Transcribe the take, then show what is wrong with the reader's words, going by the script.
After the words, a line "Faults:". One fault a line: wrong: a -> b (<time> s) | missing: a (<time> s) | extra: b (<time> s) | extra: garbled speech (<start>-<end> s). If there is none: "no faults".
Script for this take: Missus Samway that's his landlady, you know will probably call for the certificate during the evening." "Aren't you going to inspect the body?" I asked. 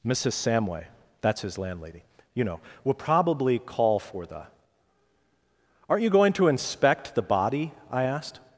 Missus Samway that's his landlady, you know will probably call for the." "Aren't you going to inspect the body?" I asked.
Faults:
missing: certificate during the evening (4.4 s)